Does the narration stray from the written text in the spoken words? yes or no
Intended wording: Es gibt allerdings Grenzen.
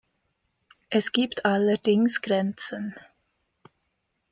no